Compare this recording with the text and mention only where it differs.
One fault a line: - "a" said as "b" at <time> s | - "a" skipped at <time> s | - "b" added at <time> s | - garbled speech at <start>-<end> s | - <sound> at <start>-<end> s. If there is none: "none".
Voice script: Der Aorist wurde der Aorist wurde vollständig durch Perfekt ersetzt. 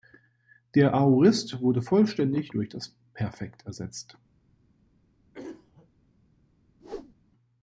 - "der Aorist wurde" skipped at 1.8 s
- "das" added at 2.7 s
- throat clearing at 5.3-5.9 s
- whoosh at 6.8-7.1 s